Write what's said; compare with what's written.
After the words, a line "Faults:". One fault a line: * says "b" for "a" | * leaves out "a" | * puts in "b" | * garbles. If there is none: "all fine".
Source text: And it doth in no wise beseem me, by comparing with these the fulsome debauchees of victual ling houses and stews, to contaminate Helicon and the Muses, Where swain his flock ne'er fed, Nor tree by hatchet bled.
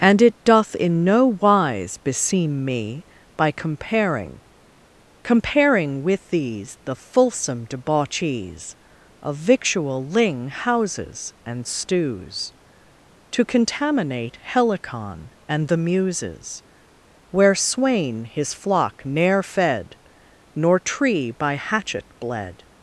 And it doth in no wise beseem me, by comparing comparing with these the fulsome debauchees of victual ling houses and stews, to contaminate Helicon and the Muses, Where swain his flock ne'er fed, Nor tree by hatchet bled.
Faults:
* puts in "comparing"